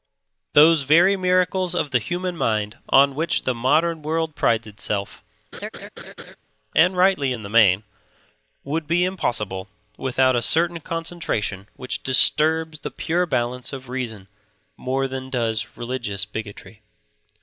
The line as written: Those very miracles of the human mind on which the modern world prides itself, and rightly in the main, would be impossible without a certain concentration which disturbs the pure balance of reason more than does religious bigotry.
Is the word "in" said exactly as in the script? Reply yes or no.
yes